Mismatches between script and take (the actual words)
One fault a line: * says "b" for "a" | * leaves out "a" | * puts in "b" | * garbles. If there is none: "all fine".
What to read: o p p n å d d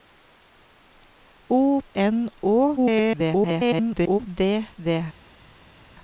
* leaves out "p p"
* garbles